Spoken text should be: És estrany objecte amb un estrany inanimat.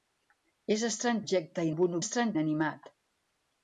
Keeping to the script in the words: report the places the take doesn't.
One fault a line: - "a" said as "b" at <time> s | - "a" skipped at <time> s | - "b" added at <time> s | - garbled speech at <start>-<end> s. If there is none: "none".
none